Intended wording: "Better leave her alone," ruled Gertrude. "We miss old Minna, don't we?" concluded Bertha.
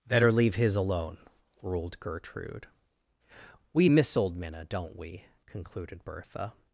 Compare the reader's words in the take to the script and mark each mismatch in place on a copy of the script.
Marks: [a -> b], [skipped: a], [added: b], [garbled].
"Better leave [her -> his] alone," ruled Gertrude. "We miss old Minna, don't we?" concluded Bertha.